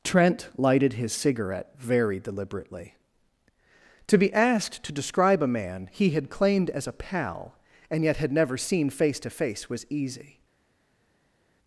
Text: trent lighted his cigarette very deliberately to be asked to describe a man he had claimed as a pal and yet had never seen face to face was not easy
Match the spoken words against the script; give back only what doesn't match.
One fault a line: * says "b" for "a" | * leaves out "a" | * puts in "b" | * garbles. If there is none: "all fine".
* leaves out "not"